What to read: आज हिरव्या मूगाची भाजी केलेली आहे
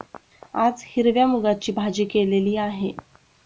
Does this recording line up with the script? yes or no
yes